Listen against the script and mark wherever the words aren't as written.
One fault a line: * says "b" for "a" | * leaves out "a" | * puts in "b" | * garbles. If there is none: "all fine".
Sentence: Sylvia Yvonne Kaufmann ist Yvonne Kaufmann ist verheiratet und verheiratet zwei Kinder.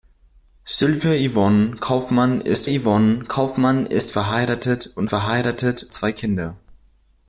all fine